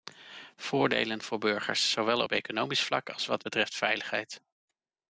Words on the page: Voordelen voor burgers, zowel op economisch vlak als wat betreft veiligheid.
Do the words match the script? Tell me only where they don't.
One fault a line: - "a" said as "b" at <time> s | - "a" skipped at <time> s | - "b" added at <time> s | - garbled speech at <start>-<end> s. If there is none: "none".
none